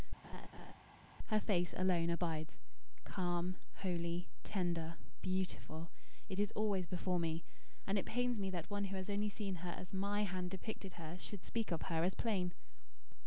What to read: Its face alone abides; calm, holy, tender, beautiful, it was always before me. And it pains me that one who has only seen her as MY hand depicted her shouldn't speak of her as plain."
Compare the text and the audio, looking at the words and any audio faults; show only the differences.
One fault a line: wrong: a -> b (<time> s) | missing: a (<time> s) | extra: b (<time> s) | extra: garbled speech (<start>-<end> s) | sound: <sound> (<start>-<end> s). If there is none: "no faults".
sound: laugh (0.2-0.7 s)
wrong: Its -> Her (1.3 s)
wrong: was -> is (6.4 s)
wrong: shouldn't -> should (11.2 s)